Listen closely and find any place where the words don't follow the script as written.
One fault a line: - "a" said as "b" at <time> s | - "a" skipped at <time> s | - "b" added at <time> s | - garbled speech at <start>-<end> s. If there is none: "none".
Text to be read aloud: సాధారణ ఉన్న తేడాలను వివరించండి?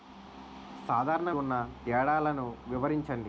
none